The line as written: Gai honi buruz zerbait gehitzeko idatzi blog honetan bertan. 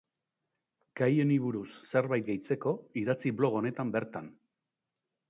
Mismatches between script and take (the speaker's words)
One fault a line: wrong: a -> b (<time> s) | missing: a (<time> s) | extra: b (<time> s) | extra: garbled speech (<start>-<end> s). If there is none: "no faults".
no faults